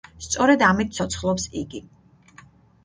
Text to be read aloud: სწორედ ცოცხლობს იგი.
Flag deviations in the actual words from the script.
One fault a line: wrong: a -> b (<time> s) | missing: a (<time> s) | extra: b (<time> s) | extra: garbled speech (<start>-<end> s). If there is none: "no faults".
extra: ამით (0.7 s)